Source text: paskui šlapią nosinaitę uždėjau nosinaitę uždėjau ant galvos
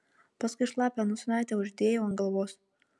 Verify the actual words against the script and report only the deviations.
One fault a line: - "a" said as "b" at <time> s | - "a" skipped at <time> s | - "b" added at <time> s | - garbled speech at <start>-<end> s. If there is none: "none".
- "nosinaitę uždėjau" skipped at 2.1 s